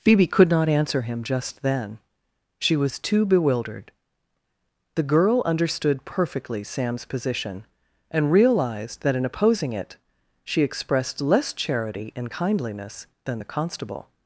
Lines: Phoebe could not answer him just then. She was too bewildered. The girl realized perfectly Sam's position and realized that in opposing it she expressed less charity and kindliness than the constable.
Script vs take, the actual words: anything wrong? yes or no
yes